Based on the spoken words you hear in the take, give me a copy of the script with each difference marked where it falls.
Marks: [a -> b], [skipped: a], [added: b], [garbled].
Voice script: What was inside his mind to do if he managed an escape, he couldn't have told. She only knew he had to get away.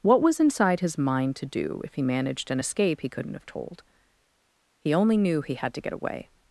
What was inside his mind to do if he managed an escape, he couldn't have told. [She -> He] only knew he had to get away.